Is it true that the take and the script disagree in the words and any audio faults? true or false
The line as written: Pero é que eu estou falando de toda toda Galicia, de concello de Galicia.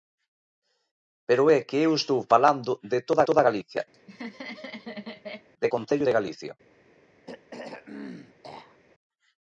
true